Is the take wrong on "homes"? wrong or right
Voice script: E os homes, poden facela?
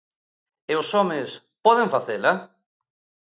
right